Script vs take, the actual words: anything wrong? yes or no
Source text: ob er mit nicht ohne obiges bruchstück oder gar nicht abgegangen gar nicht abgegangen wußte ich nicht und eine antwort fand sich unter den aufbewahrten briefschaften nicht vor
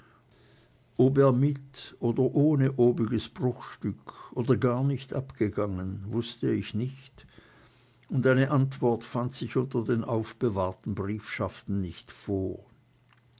yes